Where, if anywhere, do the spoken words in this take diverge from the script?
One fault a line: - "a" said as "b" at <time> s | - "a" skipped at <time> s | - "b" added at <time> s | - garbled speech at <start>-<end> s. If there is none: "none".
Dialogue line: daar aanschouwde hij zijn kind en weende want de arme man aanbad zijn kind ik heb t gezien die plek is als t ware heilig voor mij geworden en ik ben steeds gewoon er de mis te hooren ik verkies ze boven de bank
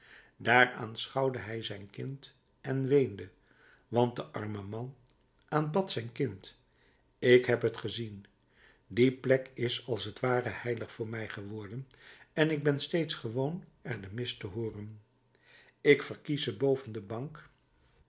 none